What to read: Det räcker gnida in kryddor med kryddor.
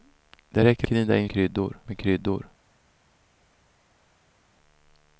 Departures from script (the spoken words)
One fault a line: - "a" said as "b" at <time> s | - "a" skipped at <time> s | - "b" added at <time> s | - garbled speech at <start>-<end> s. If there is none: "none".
none